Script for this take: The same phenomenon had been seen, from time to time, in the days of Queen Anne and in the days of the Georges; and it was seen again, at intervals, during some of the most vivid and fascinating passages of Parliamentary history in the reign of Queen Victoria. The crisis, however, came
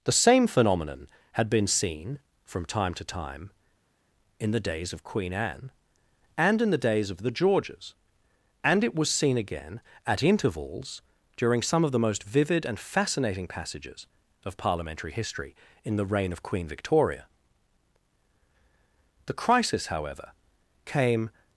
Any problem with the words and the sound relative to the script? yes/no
no